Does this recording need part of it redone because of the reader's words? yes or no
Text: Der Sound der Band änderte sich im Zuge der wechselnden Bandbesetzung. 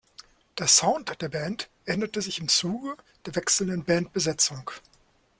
no